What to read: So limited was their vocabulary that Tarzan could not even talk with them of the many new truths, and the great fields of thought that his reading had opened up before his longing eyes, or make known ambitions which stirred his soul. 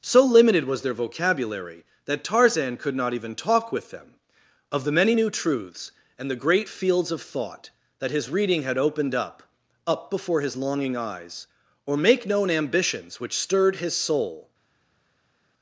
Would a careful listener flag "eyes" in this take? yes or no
no